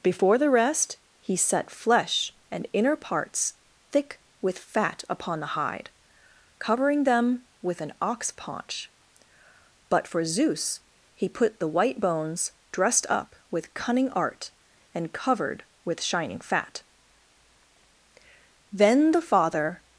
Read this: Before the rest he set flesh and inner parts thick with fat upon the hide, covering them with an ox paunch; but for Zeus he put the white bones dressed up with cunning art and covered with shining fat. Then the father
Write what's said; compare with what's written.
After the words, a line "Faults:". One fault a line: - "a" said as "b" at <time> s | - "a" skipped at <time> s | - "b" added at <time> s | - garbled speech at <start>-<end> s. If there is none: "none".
Before the rest he set flesh and inner parts thick with fat upon the hide, covering them with an ox paunch; but for Zeus he put the white bones dressed up with cunning art and covered with shining fat. Then the father
Faults:
none